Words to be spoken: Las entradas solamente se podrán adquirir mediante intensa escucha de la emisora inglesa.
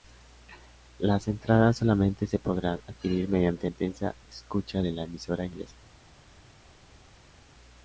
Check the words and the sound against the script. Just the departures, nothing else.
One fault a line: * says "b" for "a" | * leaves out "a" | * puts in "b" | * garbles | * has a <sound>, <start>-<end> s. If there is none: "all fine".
all fine